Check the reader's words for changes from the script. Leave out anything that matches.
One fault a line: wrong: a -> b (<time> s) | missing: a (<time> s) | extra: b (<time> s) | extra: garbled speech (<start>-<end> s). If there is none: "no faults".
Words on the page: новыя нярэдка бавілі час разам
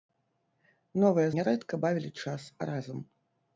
no faults